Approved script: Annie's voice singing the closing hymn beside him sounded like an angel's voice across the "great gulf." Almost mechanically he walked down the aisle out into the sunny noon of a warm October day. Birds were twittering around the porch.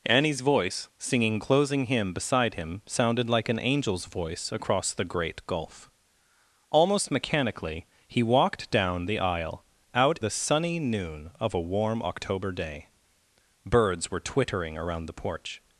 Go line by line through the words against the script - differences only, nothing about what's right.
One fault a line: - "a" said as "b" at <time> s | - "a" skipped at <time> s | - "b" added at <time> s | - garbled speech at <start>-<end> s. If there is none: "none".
- "the" skipped at 1.4 s
- "into" skipped at 10.2 s